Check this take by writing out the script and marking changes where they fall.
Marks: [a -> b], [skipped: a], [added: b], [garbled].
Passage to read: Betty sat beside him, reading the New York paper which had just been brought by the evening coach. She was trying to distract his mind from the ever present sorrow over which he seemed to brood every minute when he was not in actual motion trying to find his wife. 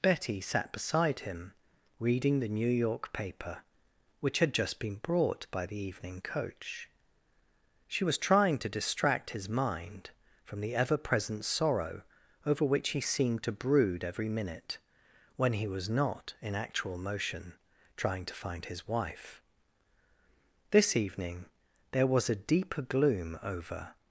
Betty sat beside him, reading the New York paper which had just been brought by the evening coach. She was trying to distract his mind from the ever present sorrow over which he seemed to brood every minute when he was not in actual motion trying to find his wife. [added: This evening there was a deeper gloom over]